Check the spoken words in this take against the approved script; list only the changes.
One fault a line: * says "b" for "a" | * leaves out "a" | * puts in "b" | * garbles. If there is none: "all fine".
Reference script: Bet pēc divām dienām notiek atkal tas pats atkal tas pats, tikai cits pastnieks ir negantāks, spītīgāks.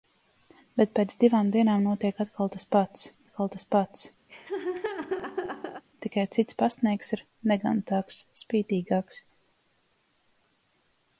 all fine